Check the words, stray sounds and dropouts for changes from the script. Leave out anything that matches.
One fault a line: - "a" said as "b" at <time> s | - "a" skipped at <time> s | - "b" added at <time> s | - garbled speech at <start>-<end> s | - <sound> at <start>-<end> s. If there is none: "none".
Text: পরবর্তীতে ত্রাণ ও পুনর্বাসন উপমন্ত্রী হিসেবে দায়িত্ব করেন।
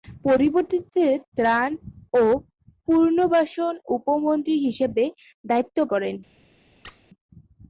- squeak at 6.8-7.0 s